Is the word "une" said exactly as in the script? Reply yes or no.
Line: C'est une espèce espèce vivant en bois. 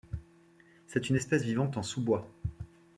yes